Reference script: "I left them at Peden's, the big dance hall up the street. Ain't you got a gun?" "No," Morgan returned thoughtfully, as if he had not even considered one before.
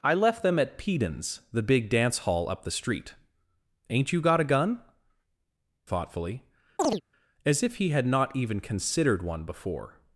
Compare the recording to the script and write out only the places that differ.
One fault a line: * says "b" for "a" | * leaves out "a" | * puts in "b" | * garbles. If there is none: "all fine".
* leaves out "No Morgan returned"